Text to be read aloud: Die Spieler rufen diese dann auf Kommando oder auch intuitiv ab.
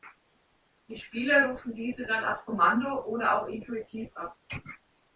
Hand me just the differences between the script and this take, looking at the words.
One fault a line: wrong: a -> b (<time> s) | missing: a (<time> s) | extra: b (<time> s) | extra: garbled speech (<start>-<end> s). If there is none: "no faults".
no faults